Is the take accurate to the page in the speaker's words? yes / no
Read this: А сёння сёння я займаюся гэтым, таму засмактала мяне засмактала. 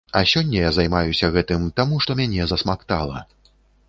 no